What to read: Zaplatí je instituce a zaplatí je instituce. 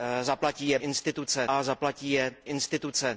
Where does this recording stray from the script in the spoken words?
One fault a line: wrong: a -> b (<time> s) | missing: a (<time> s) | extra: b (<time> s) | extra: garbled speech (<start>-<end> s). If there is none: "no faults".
no faults